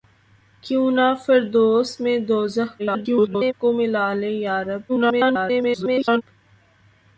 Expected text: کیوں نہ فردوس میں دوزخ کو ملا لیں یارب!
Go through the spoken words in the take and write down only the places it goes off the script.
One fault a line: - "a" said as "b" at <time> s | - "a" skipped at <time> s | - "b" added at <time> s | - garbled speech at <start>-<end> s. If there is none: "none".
- garbled speech at 2.8-3.5 s
- garbled speech at 4.9-6.2 s